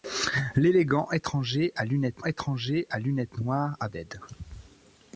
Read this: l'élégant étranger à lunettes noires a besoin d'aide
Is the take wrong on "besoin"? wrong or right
wrong